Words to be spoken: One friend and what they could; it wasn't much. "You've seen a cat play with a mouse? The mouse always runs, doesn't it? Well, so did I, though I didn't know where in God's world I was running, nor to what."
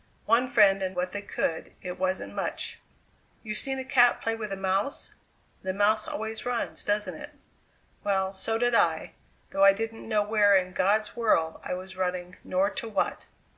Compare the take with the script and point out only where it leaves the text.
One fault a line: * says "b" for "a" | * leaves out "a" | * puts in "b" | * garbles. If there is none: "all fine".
all fine